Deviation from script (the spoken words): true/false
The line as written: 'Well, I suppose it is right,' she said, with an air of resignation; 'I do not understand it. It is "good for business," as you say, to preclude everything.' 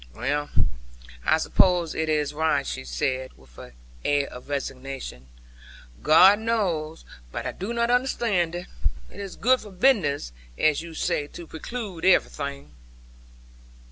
true